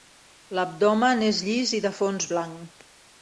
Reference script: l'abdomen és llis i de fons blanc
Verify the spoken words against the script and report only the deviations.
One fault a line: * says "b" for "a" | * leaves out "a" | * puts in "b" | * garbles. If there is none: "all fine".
all fine